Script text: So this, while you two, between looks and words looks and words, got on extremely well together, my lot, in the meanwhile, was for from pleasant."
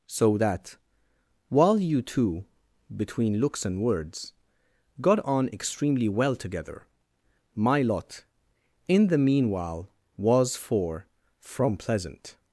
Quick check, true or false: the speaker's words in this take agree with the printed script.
false